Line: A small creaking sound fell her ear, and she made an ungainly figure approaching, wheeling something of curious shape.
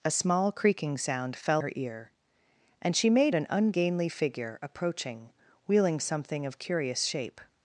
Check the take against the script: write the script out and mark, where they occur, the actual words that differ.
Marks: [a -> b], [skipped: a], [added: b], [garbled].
A small creaking sound fell her ear, and she made an ungainly figure approaching, wheeling something of curious shape.